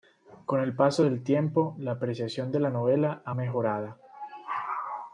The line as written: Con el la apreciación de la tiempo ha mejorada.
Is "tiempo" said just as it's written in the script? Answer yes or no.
no